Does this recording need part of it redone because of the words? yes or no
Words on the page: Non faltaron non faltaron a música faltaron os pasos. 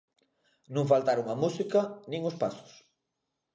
yes